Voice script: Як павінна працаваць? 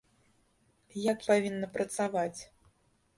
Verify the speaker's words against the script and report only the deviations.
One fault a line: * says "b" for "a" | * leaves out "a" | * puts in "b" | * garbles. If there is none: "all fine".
all fine